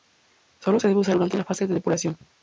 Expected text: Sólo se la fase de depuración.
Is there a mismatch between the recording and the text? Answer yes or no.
yes